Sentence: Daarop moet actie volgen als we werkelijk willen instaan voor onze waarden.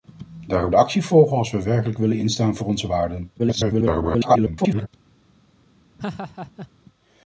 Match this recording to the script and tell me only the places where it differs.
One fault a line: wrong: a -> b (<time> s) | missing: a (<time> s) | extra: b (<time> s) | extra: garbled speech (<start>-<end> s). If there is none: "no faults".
missing: moet (0.7 s)
extra: garbled speech (3.4-4.9 s)